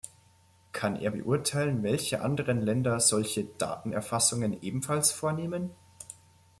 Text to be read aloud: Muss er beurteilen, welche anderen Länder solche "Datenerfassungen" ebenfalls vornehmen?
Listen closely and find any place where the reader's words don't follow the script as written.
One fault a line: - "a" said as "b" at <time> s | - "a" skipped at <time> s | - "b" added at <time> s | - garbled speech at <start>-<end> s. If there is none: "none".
- "Muss" said as "Kann" at 0.7 s